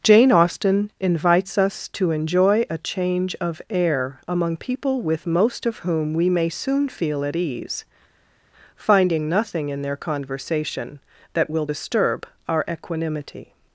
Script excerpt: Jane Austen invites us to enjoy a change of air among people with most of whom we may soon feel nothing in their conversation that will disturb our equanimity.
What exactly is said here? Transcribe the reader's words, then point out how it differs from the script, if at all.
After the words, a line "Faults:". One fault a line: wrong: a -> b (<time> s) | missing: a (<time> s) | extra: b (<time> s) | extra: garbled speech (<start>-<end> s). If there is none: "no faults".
Jane Austen invites us to enjoy a change of air among people with most of whom we may soon feel at ease, finding nothing in their conversation that will disturb our equanimity.
Faults:
extra: at ease finding (7.2 s)